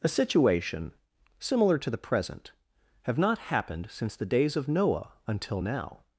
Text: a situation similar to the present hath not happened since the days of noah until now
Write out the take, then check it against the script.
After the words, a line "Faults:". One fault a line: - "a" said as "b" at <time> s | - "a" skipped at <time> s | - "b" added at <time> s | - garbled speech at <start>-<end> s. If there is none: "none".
a situation similar to the present have not happened since the days of noah until now
Faults:
- "hath" said as "have" at 3.0 s